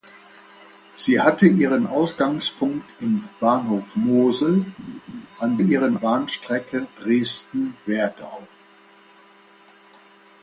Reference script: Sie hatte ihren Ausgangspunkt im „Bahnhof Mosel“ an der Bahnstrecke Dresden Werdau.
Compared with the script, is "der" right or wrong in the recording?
wrong